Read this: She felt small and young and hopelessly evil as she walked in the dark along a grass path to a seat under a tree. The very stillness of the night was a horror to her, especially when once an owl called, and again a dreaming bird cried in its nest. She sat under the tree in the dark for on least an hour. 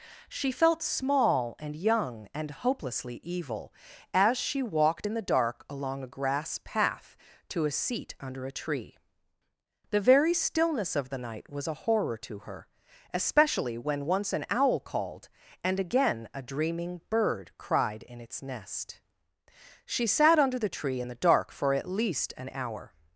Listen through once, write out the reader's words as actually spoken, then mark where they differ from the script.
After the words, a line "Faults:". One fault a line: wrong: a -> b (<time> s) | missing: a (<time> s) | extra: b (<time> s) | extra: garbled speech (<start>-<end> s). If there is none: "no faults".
She felt small and young and hopelessly evil as she walked in the dark along a grass path to a seat under a tree. The very stillness of the night was a horror to her, especially when once an owl called, and again a dreaming bird cried in its nest. She sat under the tree in the dark for at least an hour.
Faults:
wrong: on -> at (21.7 s)